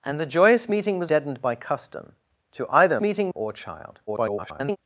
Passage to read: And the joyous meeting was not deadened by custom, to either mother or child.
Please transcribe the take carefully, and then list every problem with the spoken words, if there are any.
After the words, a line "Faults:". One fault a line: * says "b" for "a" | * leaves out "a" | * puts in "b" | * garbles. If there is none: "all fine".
And the joyous meeting was deadened by custom, to either meeting or child. [garbled]
Faults:
* leaves out "not"
* says "meeting" for "mother"
* garbles